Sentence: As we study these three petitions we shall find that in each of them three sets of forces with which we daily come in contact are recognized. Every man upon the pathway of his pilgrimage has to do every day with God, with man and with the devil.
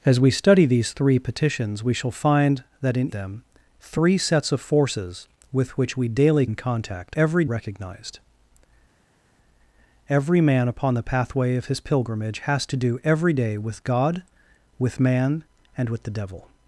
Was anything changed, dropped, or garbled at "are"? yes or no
yes